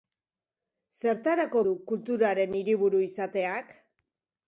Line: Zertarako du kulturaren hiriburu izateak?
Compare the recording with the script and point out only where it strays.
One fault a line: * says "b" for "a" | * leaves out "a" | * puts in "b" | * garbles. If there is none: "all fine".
all fine